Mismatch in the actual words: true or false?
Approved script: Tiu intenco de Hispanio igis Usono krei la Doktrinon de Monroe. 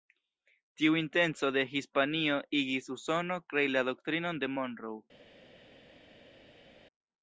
false